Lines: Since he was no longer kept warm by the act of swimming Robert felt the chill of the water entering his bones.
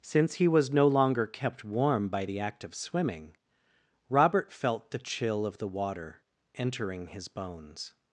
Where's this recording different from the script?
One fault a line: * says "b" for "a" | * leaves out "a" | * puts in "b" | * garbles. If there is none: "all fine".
all fine